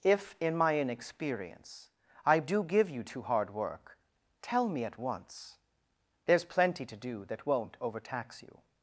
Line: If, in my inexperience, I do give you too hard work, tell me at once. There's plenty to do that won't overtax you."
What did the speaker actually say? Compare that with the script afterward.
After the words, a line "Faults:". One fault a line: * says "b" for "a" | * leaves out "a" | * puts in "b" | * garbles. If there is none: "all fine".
If, in my inexperience, I do give you too hard work, tell me at once. There's plenty to do that won't overtax you."
Faults:
all fine